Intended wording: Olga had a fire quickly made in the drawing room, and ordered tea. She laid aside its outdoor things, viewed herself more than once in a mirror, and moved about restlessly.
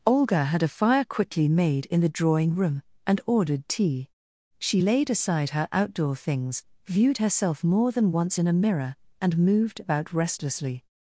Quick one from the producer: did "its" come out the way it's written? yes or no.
no